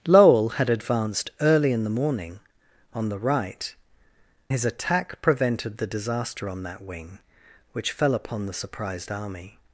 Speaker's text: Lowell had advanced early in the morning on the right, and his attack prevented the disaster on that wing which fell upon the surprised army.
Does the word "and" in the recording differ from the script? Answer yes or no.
yes